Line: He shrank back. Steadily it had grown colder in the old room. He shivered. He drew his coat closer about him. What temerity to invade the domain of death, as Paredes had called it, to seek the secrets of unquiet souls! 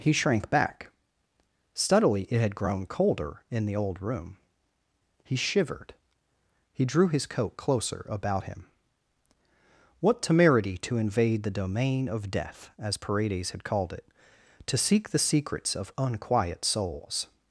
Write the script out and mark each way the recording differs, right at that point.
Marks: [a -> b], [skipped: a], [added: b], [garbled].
He shrank back. Steadily it had grown colder in the old room. He shivered. He drew his coat closer about him. What temerity to invade the domain of death, as Paredes had called it, to seek the secrets of unquiet souls!